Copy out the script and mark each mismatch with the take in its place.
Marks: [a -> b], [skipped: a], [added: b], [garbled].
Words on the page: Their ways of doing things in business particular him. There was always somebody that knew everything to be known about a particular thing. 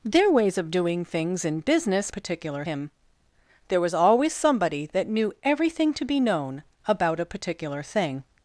Their ways of doing things in business particular him. There was always somebody that knew everything to be known about a particular thing.